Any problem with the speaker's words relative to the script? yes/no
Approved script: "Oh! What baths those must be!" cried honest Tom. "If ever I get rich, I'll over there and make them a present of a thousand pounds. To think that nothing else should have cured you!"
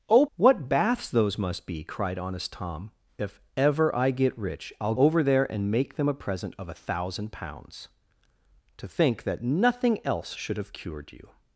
no